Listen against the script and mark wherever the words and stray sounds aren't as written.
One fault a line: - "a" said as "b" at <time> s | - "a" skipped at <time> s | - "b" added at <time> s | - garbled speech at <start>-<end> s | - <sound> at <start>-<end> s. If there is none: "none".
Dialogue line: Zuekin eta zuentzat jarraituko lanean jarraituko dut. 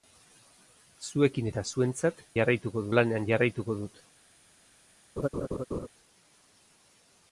- laugh at 5.2-5.9 s